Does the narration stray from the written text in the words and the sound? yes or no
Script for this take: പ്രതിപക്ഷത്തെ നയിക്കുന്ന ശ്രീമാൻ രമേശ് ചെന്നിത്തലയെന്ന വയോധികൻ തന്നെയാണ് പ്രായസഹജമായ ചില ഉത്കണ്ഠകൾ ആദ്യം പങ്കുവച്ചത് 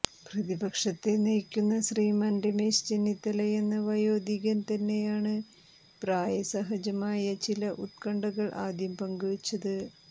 no